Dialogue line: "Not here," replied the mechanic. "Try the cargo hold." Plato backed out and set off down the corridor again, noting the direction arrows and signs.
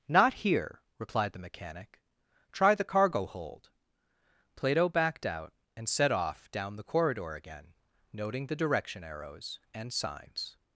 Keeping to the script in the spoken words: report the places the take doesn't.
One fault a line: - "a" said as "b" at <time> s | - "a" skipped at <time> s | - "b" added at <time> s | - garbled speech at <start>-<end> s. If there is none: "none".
none